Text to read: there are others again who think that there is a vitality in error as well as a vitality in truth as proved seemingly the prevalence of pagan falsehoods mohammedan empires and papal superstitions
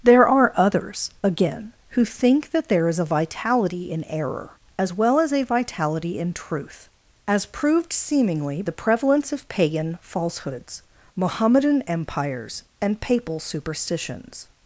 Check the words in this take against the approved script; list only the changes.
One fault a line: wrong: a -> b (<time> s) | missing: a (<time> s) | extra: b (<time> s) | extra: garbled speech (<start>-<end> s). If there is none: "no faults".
no faults